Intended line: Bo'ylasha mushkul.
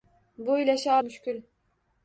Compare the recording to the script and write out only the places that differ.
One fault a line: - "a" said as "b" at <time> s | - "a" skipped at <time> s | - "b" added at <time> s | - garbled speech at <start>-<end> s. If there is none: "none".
none